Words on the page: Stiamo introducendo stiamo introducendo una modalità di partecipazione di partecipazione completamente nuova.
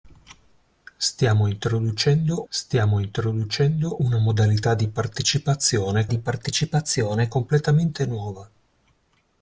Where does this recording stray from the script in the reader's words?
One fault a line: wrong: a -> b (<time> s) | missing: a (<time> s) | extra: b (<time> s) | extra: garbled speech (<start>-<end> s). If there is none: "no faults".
no faults